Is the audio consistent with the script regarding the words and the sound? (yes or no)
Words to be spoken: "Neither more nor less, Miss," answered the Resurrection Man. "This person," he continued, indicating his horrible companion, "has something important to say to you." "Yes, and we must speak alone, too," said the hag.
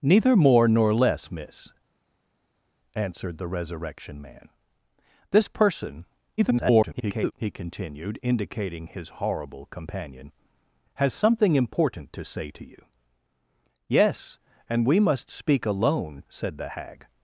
no